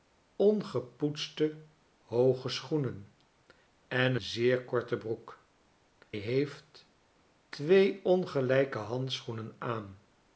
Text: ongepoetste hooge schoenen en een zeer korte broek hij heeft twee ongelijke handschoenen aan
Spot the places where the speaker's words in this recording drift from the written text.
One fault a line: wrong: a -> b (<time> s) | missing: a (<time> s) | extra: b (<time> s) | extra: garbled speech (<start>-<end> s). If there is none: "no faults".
missing: een (4.2 s)
missing: hij (5.4 s)